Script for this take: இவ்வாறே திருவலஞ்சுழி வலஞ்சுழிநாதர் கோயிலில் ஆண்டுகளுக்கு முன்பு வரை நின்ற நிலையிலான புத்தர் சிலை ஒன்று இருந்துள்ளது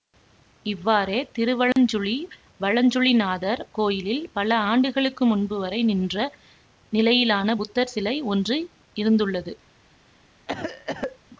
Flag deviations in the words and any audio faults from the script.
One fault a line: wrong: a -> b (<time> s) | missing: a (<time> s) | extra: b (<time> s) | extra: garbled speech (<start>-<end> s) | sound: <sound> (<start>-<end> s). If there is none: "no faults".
sound: dropout (1.7-1.8 s)
extra: பல (4.3 s)
sound: cough (10.5-11.2 s)